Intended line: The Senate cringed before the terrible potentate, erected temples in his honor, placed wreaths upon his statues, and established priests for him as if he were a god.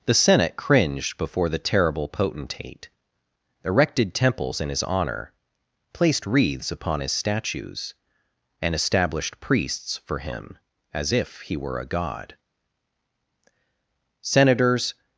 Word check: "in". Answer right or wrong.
right